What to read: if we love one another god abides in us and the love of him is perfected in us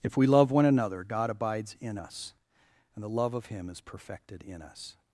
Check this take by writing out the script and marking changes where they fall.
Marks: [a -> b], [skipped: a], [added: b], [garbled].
if we love one another god abides in us and the love of him is perfected in us